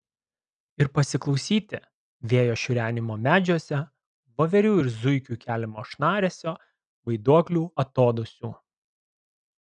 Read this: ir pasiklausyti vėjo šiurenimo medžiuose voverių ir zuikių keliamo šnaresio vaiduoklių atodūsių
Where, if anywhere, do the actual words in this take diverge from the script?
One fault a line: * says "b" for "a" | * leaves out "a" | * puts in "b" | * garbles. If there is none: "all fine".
all fine